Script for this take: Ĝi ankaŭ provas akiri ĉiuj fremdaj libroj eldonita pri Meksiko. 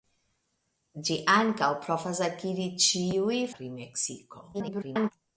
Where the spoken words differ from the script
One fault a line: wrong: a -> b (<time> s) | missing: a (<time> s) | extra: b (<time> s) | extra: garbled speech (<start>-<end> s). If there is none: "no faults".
missing: fremdaj libroj eldonita (3.4 s)
extra: garbled speech (4.5-5.1 s)